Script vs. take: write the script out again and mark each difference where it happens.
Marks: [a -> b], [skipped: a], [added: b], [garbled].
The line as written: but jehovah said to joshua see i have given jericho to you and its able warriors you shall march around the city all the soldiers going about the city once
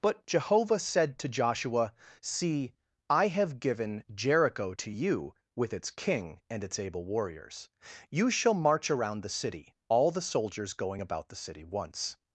but jehovah said to joshua see i have given jericho to you [added: with its king] and its able warriors you shall march around the city all the soldiers going about the city once